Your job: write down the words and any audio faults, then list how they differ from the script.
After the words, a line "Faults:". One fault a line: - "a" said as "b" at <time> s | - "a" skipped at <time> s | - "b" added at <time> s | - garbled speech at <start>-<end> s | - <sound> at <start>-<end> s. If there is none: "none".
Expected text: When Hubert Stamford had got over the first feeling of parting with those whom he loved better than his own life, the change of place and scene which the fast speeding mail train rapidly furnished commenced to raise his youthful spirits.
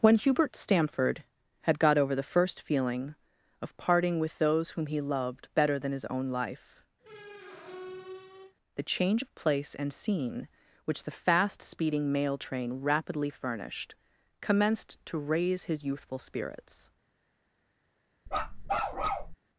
When Hubert Stamford had got over the first feeling of parting with those whom he loved better than his own life, the change of place and scene which the fast speeding mail train rapidly furnished commenced to raise his youthful spirits.
Faults:
- squeak at 7.0-8.6 s
- bark at 18.3-19.4 s